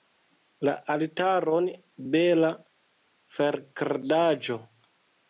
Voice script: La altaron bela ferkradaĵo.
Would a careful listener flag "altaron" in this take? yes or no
no